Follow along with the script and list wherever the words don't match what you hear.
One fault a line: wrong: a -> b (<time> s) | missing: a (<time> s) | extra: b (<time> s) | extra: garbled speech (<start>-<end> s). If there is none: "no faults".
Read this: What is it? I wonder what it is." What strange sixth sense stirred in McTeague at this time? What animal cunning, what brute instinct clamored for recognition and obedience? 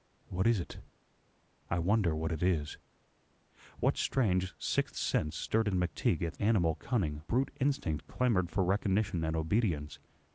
missing: this time What (6.3 s)
missing: what (7.2 s)